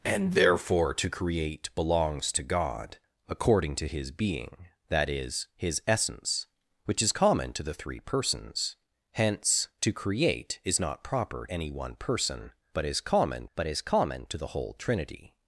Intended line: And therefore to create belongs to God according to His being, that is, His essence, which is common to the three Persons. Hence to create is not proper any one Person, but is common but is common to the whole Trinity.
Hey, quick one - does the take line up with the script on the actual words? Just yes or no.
yes